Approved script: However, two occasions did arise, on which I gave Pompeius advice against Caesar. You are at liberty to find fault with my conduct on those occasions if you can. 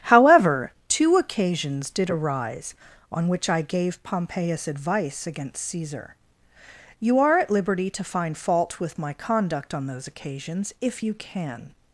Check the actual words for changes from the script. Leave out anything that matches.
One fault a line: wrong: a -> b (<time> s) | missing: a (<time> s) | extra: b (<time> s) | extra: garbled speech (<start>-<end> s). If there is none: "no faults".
no faults